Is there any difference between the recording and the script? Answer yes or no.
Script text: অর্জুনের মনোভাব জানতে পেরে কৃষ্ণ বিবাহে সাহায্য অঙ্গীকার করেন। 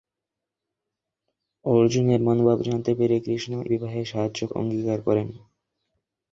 no